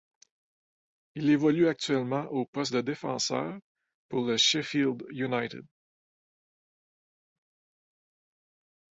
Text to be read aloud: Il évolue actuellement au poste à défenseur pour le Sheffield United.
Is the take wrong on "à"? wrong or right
wrong